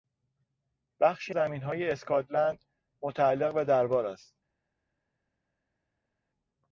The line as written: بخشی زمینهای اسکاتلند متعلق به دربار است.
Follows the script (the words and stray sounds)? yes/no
yes